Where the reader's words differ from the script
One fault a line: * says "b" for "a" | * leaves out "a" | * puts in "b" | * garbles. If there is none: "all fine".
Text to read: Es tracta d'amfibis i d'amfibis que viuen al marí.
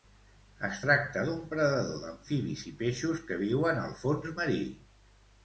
* puts in "d'un predador"
* says "peixos" for "d'amfibis"
* puts in "fons"